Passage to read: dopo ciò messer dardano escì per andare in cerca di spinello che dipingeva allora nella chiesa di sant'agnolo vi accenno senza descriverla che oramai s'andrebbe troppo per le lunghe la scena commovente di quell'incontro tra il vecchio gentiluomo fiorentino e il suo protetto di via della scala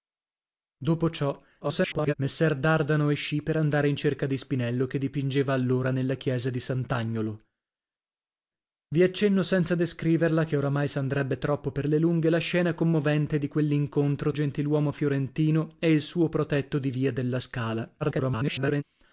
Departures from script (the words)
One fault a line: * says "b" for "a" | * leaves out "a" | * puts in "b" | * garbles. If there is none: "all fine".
* garbles
* leaves out "tra il vecchio"
* garbles